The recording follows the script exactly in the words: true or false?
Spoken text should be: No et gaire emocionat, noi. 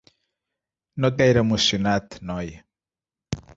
true